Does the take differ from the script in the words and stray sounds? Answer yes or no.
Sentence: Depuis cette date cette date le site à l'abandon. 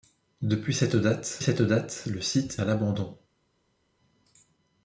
no